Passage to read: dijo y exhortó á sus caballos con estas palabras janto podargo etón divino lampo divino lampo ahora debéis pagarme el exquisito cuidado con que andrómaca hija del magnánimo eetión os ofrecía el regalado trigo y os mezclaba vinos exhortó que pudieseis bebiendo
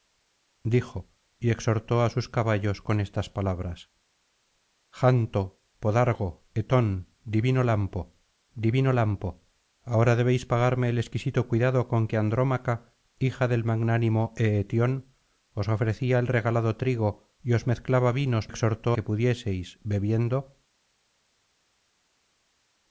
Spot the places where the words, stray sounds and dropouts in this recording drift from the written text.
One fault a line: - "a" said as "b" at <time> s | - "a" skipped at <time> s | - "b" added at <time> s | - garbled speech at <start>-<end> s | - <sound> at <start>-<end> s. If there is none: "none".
none